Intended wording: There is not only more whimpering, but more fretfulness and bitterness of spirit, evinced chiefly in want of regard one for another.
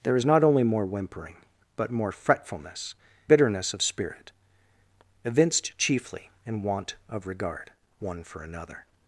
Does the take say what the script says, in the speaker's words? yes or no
no